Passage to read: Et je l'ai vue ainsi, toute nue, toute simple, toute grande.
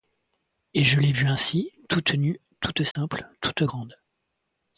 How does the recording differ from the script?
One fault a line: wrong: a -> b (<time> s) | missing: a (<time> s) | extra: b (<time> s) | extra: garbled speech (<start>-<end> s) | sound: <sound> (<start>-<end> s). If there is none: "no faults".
sound: dropout (2.9-3.0 s)